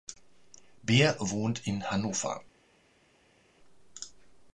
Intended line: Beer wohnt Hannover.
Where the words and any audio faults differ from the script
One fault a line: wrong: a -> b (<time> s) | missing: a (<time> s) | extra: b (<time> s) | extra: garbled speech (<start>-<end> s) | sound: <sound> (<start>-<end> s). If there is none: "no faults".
extra: in (1.7 s)